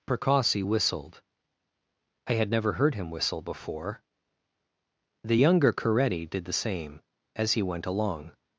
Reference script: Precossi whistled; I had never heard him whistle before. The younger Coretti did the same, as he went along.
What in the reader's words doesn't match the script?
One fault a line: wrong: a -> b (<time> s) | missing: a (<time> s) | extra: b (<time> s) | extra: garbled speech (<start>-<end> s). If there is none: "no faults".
no faults